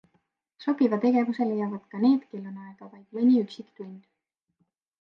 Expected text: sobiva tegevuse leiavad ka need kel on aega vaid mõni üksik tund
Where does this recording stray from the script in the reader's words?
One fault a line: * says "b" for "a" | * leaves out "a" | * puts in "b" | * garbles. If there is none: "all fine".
all fine